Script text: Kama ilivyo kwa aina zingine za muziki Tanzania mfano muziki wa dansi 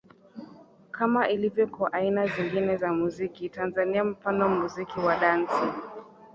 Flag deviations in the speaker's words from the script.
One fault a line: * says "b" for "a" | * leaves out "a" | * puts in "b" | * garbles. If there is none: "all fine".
all fine